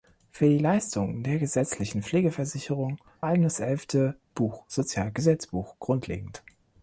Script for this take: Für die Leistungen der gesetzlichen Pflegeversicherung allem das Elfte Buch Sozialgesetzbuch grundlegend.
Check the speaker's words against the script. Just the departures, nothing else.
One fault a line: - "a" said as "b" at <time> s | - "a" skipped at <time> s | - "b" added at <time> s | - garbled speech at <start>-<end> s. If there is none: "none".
none